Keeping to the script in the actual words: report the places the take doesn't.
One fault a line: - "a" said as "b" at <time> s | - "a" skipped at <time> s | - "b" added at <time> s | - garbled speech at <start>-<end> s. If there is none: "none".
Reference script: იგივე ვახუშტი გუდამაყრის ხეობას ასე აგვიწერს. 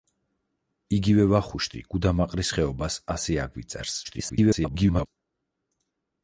- garbled speech at 4.0-5.1 s